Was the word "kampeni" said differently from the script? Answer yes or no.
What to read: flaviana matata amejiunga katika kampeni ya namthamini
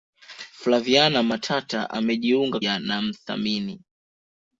yes